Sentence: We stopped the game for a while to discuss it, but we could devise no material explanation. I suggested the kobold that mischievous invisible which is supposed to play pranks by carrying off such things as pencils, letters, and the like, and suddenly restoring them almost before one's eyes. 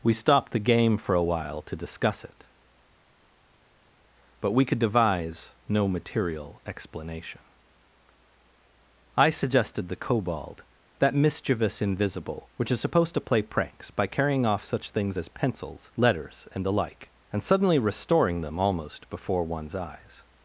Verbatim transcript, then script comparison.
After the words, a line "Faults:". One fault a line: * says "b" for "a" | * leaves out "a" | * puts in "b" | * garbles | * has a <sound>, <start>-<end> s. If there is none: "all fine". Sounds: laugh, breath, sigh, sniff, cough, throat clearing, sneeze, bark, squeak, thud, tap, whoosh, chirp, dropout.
We stopped the game for a while to discuss it, but we could devise no material explanation. I suggested the kobold that mischievous invisible which is supposed to play pranks by carrying off such things as pencils, letters, and the like, and suddenly restoring them almost before one's eyes.
Faults:
all fine